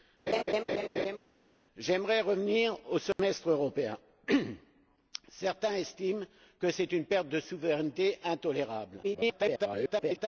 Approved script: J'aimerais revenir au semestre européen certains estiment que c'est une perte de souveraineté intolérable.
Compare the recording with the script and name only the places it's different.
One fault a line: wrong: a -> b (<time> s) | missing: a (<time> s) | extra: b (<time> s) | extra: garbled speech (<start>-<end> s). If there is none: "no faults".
extra: garbled speech (9.0-10.3 s)